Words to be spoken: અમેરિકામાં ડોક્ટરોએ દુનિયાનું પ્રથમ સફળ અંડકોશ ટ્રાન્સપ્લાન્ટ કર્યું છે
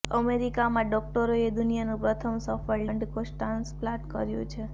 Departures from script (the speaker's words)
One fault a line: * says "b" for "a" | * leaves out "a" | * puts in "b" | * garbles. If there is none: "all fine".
all fine